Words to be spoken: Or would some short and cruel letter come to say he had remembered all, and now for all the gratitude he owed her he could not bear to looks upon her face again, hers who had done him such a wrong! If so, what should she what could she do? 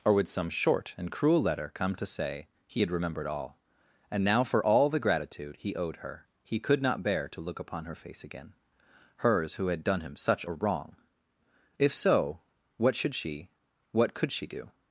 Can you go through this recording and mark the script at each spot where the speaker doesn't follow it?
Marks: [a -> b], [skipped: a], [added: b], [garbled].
Or would some short and cruel letter come to say he had remembered all, and now for all the gratitude he owed her he could not bear to [looks -> look] upon her face again, hers who had done him such a wrong! If so, what should she what could she do?